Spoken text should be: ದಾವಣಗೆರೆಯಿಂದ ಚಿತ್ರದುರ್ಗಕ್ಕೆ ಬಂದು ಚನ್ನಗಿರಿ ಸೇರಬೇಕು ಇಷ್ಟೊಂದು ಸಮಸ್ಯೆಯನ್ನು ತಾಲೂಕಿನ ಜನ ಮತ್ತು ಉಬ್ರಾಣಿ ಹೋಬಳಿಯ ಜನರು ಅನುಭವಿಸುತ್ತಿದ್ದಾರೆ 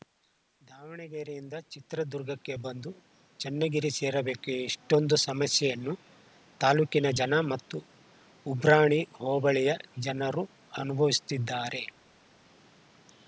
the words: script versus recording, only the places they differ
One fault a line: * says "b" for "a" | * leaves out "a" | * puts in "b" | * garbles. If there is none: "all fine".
all fine